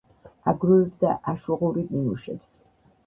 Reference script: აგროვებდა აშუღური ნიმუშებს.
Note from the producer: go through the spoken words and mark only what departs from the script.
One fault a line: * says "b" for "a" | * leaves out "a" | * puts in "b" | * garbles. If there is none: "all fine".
all fine